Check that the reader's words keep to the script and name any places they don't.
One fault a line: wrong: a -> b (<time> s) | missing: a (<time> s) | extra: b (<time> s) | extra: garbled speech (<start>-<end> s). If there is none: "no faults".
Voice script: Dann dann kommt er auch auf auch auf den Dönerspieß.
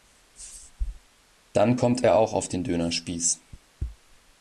missing: dann (1.8 s)
missing: auch auf (2.5 s)